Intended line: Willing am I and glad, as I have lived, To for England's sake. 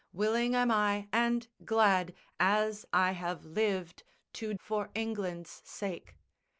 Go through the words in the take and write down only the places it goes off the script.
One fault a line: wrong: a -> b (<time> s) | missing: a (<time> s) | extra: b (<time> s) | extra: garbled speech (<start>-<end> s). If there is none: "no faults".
no faults